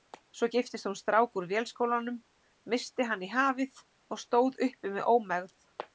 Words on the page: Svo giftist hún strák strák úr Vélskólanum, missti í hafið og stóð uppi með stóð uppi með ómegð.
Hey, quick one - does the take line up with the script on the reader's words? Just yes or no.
no